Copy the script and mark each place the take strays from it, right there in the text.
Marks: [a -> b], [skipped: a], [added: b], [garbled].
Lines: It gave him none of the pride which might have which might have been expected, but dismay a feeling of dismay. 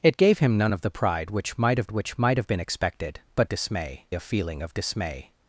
It gave him none of the pride which might have which might have been expected, but dismay a feeling of dismay.